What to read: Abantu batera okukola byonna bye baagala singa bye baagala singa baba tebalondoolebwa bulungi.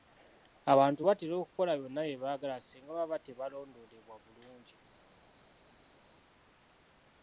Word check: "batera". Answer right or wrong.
right